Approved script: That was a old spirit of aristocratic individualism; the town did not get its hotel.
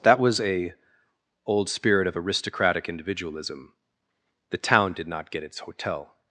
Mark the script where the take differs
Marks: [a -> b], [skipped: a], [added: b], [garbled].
That was a old spirit of aristocratic individualism; the town did not get its hotel.